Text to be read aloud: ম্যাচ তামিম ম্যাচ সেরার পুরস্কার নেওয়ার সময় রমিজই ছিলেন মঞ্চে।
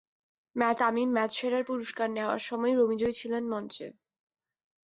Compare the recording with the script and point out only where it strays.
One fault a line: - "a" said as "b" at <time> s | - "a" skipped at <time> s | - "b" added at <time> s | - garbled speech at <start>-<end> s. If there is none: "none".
none